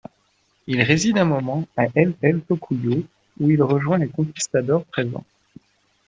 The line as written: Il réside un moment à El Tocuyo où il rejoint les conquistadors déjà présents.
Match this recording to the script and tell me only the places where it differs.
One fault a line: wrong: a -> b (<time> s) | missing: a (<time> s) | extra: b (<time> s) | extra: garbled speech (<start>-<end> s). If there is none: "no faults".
extra: El (2.2 s)
missing: déjà (4.8 s)